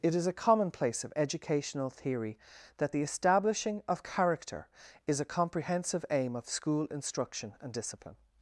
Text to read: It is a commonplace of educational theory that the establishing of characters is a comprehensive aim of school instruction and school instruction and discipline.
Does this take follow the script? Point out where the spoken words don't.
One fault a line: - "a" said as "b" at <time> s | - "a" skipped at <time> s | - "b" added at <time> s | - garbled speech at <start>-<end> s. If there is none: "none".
- "characters" said as "character" at 4.0 s
- "school instruction and" skipped at 7.7 s